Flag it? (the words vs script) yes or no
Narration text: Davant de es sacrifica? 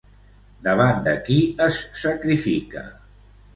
yes